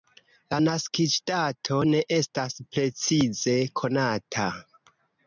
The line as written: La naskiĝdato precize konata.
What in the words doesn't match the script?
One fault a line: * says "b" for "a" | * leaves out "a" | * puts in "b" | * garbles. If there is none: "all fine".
* puts in "ne estas"